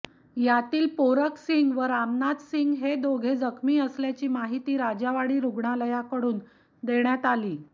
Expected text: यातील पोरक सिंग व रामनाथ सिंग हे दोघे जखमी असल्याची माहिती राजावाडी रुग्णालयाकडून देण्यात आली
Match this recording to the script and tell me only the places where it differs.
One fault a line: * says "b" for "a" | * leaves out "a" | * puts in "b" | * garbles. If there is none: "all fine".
all fine